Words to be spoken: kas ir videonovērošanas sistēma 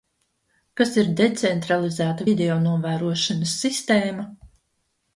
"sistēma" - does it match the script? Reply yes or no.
yes